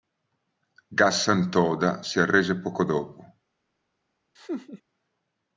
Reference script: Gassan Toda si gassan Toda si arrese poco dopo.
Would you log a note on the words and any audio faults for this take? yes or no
yes